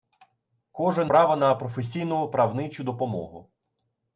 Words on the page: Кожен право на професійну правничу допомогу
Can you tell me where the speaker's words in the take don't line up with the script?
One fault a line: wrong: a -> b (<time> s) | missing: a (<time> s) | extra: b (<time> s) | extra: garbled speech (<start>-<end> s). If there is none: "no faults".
no faults